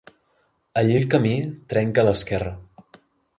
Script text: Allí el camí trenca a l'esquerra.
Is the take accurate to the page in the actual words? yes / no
yes